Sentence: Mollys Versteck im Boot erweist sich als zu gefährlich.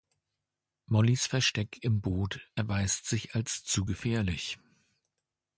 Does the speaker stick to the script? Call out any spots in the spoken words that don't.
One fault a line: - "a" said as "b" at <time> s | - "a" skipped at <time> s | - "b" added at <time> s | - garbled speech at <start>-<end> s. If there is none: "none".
none